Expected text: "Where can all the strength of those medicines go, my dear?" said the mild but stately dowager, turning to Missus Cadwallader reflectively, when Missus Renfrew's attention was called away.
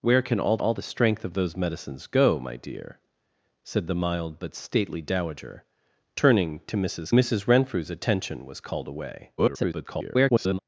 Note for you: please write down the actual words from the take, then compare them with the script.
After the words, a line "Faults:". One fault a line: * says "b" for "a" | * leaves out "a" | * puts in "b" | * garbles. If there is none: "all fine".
"Where can all all the strength of those medicines go, my dear?" said the mild but stately dowager, turning to Missus Missus Renfrew's attention was called away. [garbled]
Faults:
* puts in "all"
* leaves out "Cadwallader reflectively when"
* garbles